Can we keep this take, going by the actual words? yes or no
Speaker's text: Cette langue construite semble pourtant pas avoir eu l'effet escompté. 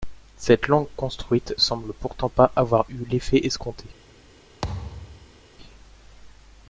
yes